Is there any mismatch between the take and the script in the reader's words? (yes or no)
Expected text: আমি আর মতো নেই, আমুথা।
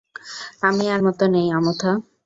no